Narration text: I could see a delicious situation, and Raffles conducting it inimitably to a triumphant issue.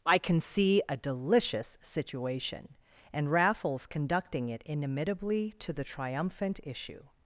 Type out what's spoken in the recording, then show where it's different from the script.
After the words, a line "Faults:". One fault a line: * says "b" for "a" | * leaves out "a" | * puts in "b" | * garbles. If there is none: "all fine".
I can see a delicious situation, and Raffles conducting it inimitably to the triumphant issue.
Faults:
* says "can" for "could"
* says "the" for "a"